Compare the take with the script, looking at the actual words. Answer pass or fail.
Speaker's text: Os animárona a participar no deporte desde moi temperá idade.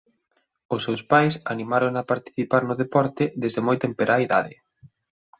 fail